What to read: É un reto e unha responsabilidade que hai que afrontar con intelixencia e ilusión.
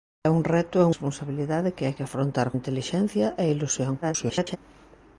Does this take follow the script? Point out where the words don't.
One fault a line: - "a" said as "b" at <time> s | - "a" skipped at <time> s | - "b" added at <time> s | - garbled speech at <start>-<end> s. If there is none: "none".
- "unha" skipped at 0.9 s
- "con" skipped at 2.5 s
- garbled speech at 4.0-4.6 s